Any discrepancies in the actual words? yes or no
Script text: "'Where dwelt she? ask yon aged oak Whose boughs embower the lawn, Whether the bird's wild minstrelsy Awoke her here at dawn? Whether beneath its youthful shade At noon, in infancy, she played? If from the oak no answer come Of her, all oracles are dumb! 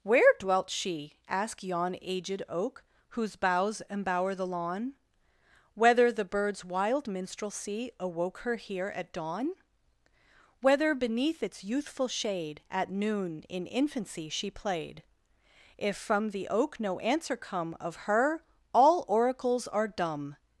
yes